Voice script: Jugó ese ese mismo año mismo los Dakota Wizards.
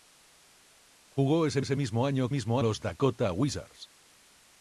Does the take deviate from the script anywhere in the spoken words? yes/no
no